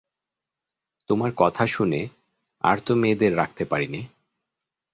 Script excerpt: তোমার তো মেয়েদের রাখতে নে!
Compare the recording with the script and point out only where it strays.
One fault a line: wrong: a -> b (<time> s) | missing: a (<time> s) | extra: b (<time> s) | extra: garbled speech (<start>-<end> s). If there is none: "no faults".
extra: কথা শুনে আর (1.4 s)
extra: পারি (3.7 s)